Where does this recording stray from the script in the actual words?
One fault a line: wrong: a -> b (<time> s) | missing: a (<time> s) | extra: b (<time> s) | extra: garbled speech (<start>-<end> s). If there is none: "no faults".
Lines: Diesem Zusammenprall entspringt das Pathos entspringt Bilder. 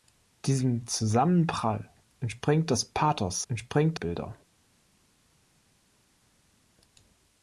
no faults